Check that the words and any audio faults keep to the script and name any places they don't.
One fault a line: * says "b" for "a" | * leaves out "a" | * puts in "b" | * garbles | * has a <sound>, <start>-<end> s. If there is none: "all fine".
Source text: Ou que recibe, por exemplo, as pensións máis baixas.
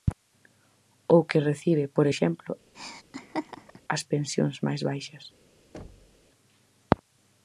* has a laugh, 2.7-3.8 s
* has a thud, 5.7-6.2 s